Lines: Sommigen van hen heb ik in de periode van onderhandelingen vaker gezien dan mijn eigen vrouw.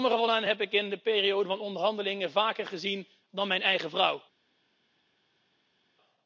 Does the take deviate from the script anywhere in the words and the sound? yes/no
no